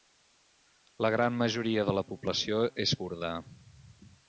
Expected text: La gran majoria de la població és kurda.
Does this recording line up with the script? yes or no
yes